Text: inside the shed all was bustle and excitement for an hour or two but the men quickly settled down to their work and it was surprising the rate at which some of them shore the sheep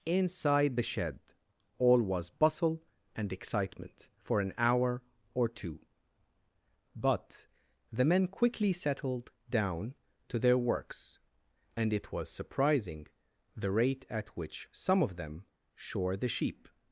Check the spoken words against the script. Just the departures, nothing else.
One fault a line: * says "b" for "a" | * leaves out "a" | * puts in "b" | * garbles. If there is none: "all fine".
* says "works" for "work"